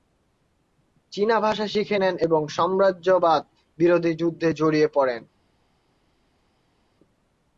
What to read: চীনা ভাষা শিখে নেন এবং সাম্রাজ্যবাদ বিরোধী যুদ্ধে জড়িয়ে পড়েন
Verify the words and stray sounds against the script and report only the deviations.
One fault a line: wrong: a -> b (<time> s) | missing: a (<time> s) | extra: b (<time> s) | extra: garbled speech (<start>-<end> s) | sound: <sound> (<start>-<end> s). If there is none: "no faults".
no faults